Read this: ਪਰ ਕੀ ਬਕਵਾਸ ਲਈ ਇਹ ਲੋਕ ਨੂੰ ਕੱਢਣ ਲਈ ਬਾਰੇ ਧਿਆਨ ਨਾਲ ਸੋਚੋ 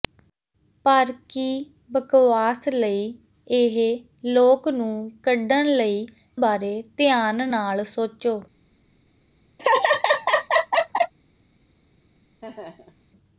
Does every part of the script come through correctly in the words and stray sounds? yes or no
no